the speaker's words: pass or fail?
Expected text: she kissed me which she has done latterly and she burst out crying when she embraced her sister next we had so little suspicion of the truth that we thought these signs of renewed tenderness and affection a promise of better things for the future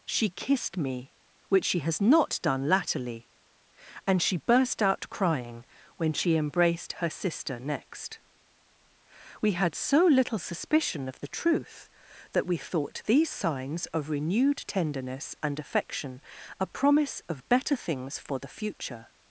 fail